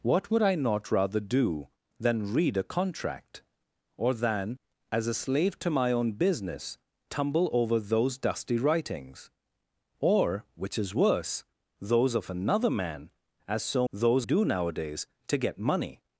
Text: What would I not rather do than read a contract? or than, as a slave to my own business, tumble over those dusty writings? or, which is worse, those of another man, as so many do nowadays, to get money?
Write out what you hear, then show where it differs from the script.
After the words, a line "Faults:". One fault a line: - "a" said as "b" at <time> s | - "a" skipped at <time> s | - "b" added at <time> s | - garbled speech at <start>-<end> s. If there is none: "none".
What would I not rather do than read a contract? or than, as a slave to my own business, tumble over those dusty writings? or, which is worse, those of another man, as so those do nowadays, to get money?
Faults:
- "many" said as "those" at 13.9 s